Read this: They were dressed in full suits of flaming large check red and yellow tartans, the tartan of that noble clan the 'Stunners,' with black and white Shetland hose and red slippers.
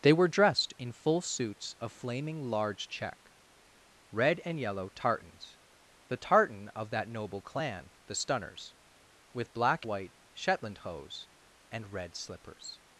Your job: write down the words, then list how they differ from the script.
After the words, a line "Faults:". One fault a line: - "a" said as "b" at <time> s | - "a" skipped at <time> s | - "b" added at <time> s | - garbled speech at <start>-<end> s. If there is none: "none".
They were dressed in full suits of flaming large check red and yellow tartans, the tartan of that noble clan the 'Stunners,' with black white Shetland hose and red slippers.
Faults:
- "and" skipped at 9.8 s